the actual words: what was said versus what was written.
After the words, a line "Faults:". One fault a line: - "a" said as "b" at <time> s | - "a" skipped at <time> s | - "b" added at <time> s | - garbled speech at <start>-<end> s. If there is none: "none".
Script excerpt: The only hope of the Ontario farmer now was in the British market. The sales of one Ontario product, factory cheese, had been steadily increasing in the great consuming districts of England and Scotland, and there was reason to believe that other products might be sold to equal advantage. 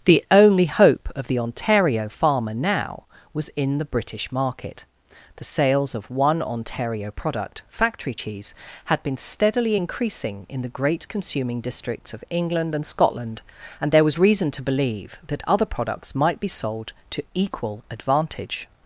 The only hope of the Ontario farmer now was in the British market. The sales of one Ontario product, factory cheese, had been steadily increasing in the great consuming districts of England and Scotland, and there was reason to believe that other products might be sold to equal advantage.
Faults:
none